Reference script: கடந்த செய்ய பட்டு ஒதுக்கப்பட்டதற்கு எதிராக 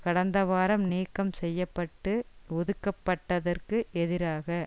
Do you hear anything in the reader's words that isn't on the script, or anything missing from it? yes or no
yes